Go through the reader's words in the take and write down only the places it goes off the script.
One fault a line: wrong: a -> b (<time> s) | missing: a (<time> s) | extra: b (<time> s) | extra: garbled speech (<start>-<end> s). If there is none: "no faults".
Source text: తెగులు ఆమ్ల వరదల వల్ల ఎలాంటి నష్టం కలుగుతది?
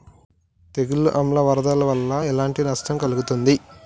no faults